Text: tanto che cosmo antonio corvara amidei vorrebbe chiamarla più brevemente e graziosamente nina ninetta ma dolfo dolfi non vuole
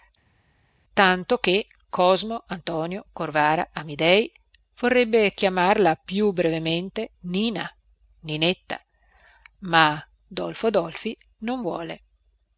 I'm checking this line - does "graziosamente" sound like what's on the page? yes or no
no